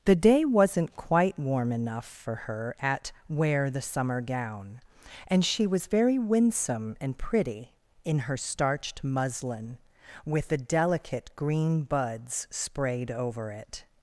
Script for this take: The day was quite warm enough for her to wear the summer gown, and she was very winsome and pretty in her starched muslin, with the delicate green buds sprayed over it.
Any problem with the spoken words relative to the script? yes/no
yes